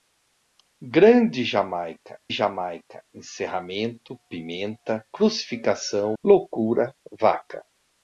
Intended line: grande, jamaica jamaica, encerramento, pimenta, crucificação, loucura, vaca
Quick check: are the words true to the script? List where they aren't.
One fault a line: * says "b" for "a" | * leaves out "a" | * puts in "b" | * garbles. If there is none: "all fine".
all fine